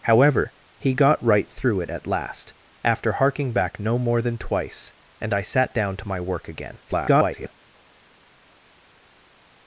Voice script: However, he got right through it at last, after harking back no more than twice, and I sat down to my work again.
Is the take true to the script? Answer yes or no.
no